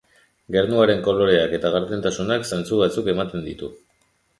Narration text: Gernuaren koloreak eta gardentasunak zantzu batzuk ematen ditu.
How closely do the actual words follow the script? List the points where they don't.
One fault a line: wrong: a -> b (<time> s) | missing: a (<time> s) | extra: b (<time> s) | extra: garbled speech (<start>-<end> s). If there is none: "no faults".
no faults